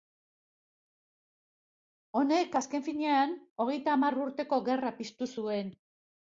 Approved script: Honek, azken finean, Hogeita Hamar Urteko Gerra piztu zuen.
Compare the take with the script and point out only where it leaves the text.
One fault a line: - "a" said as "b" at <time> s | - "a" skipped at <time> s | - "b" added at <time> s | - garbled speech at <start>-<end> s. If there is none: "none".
none